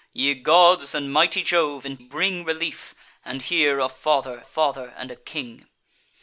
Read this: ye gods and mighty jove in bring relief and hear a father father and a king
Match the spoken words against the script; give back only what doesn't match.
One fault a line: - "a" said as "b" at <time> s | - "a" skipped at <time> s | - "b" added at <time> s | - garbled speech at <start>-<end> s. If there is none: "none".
none